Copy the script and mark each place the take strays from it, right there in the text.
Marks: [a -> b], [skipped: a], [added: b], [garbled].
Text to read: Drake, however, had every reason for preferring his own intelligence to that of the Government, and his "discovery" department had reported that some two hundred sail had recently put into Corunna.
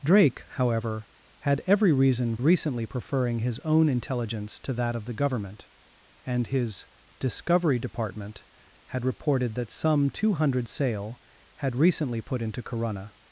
Drake, however, had every reason [for -> recently] preferring his own intelligence to that of the Government, and his "discovery" department had reported that some two hundred sail had recently put into Corunna.